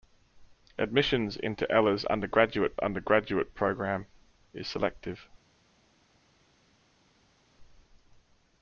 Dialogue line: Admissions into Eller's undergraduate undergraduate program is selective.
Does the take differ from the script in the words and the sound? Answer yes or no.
no